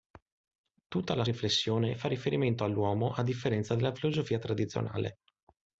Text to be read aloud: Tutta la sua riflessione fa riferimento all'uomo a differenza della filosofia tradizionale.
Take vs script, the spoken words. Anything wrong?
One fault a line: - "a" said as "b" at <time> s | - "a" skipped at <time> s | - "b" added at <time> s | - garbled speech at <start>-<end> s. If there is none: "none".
- "sua" skipped at 1.2 s